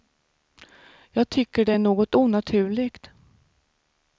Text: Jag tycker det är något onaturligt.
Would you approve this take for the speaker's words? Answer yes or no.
yes